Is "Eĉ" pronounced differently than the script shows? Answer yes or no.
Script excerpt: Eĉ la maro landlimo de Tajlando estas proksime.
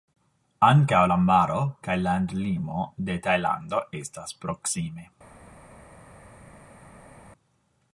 yes